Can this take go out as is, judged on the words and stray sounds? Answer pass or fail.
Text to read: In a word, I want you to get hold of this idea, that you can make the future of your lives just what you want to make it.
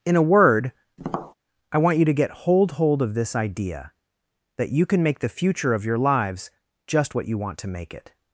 fail